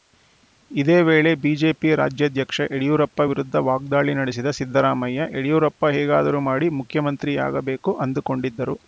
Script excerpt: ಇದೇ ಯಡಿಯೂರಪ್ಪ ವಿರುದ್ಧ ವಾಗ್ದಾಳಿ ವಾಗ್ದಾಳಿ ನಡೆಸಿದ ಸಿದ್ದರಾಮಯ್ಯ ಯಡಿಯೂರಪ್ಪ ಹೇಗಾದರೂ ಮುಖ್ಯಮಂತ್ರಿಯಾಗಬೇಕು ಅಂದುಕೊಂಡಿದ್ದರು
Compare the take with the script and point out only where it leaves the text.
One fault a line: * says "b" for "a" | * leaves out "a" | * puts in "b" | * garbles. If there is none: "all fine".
* puts in "ವೇಳೆ ಬಿಜೆಪಿ ರಾಜ್ಯಾಧ್ಯಕ್ಷ"
* leaves out "ವಾಗ್ದಾಳಿ"
* puts in "ಮಾಡಿ"